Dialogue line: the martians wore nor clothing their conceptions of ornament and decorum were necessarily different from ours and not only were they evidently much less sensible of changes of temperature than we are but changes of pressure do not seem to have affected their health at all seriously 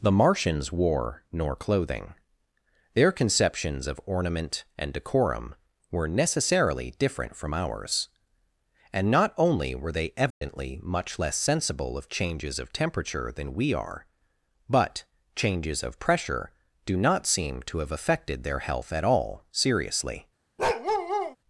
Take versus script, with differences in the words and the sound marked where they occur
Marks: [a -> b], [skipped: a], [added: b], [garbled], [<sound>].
the martians wore nor clothing their conceptions of ornament and decorum were necessarily different from ours and not only were they evidently [dropout] much less sensible of changes of temperature than we are but changes of pressure do not seem to have affected their health at all seriously [bark]